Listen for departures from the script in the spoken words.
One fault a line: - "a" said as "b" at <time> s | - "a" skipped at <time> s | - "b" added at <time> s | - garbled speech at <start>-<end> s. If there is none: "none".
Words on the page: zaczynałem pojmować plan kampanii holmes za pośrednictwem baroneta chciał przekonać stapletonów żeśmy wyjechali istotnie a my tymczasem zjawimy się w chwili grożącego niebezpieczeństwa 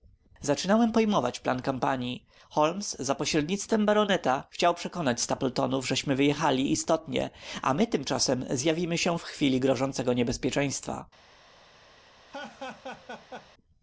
none